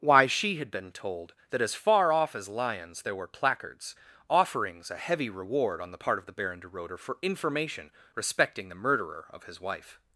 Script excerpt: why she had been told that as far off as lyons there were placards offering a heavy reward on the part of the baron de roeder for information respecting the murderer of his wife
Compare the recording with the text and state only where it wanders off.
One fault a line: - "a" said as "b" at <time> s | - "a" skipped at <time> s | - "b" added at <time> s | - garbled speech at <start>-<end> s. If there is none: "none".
- "offering" said as "offerings" at 4.3 s